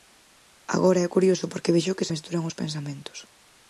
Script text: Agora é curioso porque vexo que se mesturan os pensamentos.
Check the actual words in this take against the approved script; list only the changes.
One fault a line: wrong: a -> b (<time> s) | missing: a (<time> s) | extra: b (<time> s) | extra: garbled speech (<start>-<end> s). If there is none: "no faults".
missing: se (2.1 s)